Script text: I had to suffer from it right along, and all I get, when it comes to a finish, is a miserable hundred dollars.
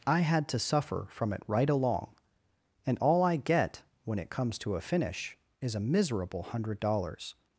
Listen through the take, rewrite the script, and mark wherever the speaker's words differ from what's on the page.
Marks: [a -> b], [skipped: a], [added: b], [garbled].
I had to suffer from it right along, and all I get, when it comes to a finish, is a miserable hundred dollars.